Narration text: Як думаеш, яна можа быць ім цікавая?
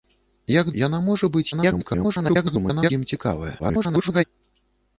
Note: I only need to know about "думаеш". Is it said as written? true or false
false